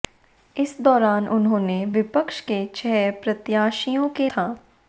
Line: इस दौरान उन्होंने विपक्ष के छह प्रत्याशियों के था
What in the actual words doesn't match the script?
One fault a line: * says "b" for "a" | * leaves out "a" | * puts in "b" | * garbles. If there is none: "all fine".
all fine